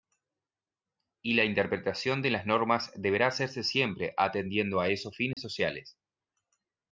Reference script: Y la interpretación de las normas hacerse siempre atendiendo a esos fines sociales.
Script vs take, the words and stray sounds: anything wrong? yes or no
yes